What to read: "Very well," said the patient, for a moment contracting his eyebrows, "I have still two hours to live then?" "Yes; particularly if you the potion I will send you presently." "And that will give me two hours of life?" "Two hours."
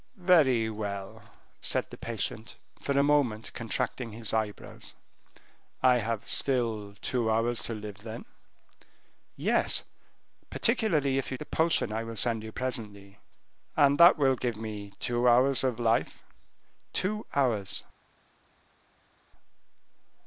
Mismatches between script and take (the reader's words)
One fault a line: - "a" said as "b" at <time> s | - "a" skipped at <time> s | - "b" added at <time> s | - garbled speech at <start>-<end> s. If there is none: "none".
none